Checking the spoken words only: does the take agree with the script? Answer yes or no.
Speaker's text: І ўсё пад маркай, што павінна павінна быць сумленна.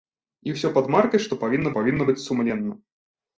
yes